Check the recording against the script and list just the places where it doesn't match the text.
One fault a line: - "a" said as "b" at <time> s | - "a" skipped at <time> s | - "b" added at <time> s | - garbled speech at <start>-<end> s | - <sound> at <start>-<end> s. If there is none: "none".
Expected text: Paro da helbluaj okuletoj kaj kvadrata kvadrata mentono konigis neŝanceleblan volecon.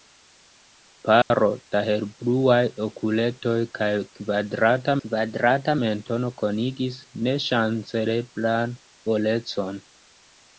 - dropout at 1.2-1.3 s